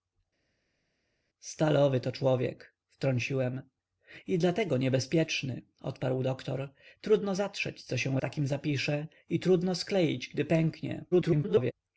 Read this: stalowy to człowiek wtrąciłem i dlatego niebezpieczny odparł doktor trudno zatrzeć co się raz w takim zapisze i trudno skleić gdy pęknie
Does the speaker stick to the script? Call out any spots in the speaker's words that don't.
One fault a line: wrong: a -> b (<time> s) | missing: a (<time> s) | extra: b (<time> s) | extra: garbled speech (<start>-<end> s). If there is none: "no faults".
missing: raz (8.2 s)
extra: garbled speech (11.1-11.7 s)